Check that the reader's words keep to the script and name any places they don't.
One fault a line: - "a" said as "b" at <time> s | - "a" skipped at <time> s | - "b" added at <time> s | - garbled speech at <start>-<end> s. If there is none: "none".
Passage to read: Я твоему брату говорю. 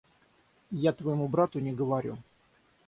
- "не" added at 1.6 s